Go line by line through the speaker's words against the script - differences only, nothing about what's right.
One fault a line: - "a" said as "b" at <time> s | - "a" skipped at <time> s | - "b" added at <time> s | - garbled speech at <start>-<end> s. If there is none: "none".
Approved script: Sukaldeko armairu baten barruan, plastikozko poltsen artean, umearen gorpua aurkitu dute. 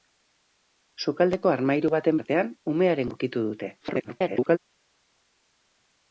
- "barruan plastikozko poltsen" skipped at 2.2 s
- "gorpua" skipped at 3.1 s
- garbled speech at 3.8-4.6 s